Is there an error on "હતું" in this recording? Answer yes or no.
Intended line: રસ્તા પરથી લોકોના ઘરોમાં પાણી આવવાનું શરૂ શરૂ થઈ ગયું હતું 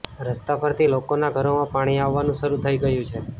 yes